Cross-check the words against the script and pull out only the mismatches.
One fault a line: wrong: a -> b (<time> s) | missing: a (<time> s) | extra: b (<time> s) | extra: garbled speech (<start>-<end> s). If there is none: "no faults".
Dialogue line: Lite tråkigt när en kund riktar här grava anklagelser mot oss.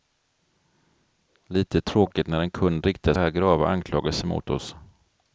no faults